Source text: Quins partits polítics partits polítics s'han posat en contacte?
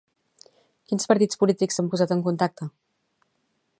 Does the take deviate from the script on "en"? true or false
false